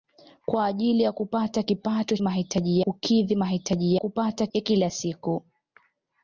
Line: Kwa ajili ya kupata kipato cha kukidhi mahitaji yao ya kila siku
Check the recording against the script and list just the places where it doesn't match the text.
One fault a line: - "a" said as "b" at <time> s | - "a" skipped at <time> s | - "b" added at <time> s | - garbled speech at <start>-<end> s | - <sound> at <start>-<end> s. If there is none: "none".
- "cha" said as "mahitaji" at 2.2 s
- "yao" said as "kupata" at 3.9 s